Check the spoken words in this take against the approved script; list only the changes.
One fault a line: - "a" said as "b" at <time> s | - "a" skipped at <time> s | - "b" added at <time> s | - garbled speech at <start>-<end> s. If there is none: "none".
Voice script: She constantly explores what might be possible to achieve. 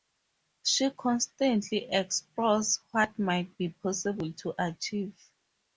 none